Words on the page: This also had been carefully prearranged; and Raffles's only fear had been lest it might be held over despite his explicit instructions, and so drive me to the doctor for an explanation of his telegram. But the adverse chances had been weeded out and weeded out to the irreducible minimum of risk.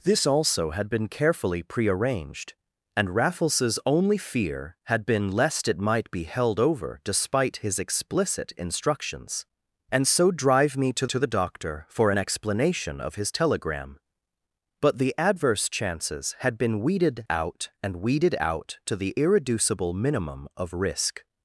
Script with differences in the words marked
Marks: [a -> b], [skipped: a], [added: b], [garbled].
This also had been carefully prearranged; and Raffles's only fear had been lest it might be held over despite his explicit instructions, and so drive me to [added: to] the doctor for an explanation of his telegram. But the adverse chances had been weeded out and weeded out to the irreducible minimum of risk.